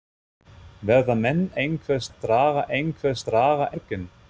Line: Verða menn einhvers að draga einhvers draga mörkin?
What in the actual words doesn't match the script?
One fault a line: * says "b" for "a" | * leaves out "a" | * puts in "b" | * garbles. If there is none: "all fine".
all fine